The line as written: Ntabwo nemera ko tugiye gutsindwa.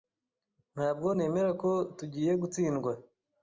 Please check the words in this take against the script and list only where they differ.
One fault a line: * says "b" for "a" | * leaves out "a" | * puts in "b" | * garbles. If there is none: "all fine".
all fine